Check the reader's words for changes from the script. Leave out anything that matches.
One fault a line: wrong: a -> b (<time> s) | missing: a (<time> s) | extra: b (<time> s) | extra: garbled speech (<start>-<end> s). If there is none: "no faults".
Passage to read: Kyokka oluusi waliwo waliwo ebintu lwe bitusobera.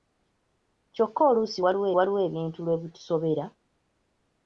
no faults